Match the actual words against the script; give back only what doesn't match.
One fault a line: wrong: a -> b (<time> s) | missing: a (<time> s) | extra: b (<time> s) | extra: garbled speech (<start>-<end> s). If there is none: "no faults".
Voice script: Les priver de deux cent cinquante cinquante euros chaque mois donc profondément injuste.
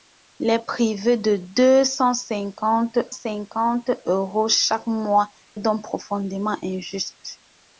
no faults